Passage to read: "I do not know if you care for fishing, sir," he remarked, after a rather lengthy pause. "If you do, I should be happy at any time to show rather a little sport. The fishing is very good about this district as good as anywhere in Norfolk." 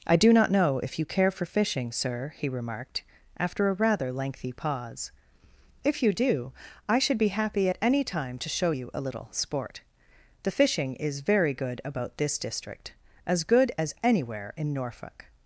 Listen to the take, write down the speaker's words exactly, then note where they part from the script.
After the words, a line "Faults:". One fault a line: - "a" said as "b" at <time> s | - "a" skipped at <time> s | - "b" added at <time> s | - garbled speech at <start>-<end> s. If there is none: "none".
"I do not know if you care for fishing, sir," he remarked, after a rather lengthy pause. "If you do, I should be happy at any time to show you a little sport. The fishing is very good about this district as good as anywhere in Norfolk."
Faults:
- "rather" said as "you" at 8.7 s